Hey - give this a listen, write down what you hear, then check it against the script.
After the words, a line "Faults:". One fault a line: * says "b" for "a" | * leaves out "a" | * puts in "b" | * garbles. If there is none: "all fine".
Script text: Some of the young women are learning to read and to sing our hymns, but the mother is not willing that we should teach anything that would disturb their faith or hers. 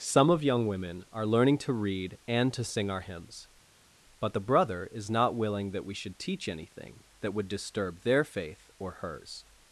Some of young women are learning to read and to sing our hymns, but the brother is not willing that we should teach anything that would disturb their faith or hers.
Faults:
* leaves out "the"
* says "brother" for "mother"